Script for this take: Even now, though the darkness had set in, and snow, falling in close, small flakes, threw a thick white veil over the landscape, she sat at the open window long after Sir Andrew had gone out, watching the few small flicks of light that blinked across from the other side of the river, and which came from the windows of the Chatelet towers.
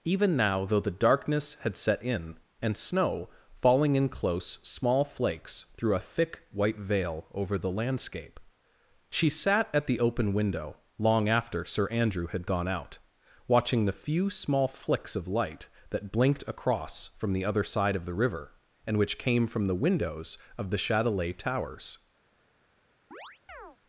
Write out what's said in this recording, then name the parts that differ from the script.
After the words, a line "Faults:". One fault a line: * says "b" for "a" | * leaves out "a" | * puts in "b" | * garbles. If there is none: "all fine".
Even now, though the darkness had set in, and snow, falling in close, small flakes, threw a thick white veil over the landscape, she sat at the open window long after Sir Andrew had gone out, watching the few small flicks of light that blinked across from the other side of the river, and which came from the windows of the Chatelet towers.
Faults:
all fine